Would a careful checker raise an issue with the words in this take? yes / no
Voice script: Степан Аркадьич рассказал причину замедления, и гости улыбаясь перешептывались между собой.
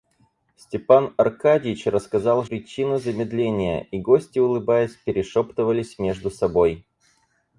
no